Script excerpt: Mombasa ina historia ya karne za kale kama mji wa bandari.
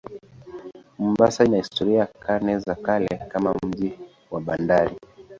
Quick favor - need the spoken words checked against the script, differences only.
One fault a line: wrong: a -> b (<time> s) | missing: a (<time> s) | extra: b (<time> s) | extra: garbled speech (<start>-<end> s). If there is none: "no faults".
no faults